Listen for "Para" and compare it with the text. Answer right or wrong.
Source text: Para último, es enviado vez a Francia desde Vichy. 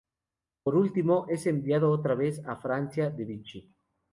wrong